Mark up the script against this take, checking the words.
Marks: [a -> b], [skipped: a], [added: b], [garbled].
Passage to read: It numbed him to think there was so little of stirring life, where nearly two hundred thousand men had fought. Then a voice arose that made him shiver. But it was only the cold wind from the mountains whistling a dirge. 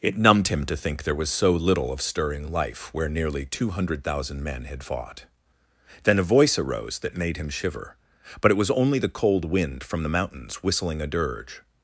It numbed him to think there was so little of stirring life, where nearly two hundred thousand men had fought. Then a voice arose that made him shiver. But it was only the cold wind from the mountains whistling a dirge.